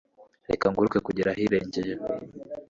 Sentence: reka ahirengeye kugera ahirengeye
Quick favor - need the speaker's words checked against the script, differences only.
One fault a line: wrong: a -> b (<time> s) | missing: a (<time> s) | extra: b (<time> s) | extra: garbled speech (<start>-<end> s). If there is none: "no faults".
wrong: ahirengeye -> nguruke (0.7 s)